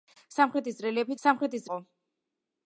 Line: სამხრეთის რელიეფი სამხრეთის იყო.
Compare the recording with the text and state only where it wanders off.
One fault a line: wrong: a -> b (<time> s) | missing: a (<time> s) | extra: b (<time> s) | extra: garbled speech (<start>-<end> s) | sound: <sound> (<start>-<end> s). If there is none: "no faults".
no faults